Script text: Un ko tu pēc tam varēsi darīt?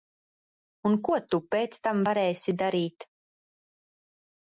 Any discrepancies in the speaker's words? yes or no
no